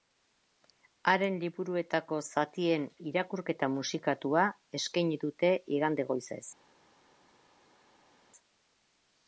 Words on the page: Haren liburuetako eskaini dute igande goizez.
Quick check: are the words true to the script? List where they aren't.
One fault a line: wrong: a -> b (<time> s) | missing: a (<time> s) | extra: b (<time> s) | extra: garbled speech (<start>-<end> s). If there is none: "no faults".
extra: zatien irakurketa musikatua (2.3 s)